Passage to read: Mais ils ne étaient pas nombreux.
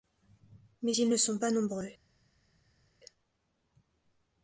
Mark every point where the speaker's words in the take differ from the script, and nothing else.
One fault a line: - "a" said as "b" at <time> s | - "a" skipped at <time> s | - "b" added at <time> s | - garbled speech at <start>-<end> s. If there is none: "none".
- "étaient" said as "sont" at 1.2 s